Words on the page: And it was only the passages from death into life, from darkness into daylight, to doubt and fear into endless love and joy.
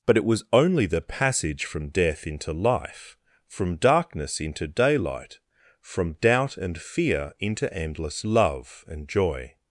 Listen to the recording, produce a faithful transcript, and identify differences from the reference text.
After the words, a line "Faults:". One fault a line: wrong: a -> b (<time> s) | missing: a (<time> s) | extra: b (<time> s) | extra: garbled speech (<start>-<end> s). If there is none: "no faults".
But it was only the passage from death into life, from darkness into daylight, from doubt and fear into endless love and joy.
Faults:
wrong: And -> But (0.1 s)
wrong: passages -> passage (1.0 s)
wrong: to -> from (5.8 s)